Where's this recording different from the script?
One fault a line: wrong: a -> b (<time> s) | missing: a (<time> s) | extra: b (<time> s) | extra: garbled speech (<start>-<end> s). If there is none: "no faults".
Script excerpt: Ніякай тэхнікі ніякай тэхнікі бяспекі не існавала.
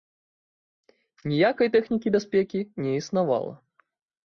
missing: ніякай тэхнікі (2.1 s)